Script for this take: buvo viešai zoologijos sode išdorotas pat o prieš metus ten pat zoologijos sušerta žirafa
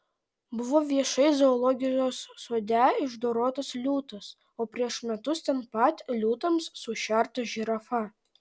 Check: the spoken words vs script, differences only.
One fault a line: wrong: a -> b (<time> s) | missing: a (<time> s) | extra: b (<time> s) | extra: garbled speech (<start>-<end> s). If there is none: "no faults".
wrong: pat -> liūtas (3.8 s)
wrong: zoologijos -> liūtams (6.2 s)